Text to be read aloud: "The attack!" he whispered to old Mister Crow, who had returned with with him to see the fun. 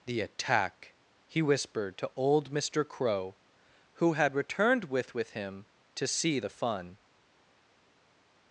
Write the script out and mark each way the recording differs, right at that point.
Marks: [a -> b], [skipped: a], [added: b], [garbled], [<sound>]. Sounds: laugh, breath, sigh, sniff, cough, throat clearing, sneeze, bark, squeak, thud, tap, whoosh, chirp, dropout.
"The attack!" he whispered to old Mister Crow, who had returned with with him to see the fun.